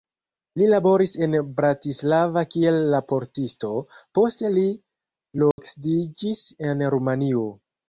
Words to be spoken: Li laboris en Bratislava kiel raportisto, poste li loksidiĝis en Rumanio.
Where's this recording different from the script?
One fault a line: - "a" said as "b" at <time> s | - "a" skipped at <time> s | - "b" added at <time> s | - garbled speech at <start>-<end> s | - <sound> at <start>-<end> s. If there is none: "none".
- dropout at 5.5-5.6 s